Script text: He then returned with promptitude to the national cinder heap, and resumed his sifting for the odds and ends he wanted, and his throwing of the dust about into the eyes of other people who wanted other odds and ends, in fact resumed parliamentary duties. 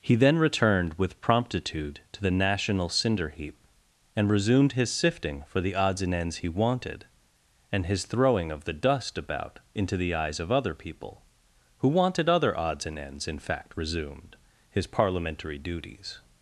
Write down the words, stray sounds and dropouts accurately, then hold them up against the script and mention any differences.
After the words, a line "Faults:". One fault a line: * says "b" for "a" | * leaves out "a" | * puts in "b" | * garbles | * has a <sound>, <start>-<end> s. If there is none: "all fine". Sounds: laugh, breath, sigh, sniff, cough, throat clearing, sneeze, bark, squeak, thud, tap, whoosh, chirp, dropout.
He then returned with promptitude to the national cinder heap, and resumed his sifting for the odds and ends he wanted, and his throwing of the dust about into the eyes of other people who wanted other odds and ends, in fact resumed his parliamentary duties.
Faults:
* puts in "his"